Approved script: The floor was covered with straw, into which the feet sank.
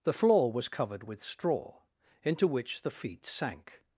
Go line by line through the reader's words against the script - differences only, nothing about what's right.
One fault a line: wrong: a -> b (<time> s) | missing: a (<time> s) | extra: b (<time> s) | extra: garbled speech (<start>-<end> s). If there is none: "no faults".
no faults